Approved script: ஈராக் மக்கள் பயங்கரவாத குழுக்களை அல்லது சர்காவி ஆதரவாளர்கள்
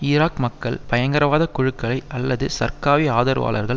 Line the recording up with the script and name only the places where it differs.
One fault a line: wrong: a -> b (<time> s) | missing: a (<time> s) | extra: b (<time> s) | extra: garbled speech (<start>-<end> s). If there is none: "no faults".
no faults